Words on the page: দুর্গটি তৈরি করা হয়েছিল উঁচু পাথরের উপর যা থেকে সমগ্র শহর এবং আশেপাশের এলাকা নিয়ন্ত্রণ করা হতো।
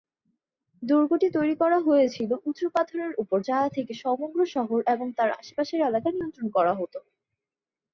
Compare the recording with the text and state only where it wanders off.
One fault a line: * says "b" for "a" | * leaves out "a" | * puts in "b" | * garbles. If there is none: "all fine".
* puts in "তার"